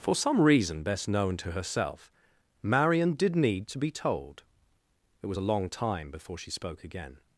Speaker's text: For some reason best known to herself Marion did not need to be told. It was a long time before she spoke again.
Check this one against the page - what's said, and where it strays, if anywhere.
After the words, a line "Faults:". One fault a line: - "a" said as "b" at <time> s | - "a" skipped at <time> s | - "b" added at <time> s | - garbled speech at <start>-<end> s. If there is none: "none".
For some reason best known to herself Marion did need to be told. It was a long time before she spoke again.
Faults:
- "not" skipped at 3.4 s